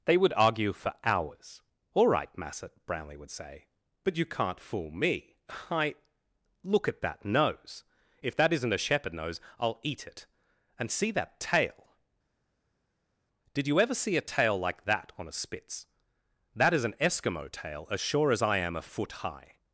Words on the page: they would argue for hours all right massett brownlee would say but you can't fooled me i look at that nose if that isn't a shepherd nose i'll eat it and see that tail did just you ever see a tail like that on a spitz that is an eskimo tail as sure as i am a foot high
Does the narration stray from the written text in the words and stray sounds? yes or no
yes